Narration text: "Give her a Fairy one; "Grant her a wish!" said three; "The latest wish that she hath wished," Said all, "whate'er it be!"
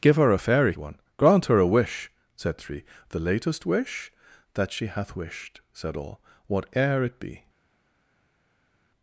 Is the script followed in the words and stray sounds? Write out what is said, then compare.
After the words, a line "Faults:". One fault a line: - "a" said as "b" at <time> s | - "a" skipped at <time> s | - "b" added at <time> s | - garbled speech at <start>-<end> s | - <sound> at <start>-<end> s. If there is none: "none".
"Give her a Fairy one; "Grant her a wish!" said three; "The latest wish that she hath wished," Said all, "whate'er it be!"
Faults:
none